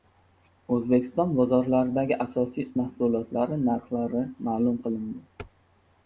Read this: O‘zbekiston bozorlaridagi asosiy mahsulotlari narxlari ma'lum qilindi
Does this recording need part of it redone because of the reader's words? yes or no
no